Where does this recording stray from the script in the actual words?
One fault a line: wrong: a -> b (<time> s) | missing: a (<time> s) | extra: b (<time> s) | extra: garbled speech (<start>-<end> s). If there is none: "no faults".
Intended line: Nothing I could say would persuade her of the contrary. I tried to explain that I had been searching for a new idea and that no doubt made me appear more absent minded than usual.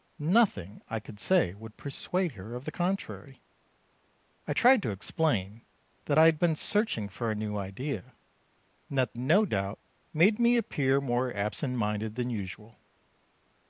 no faults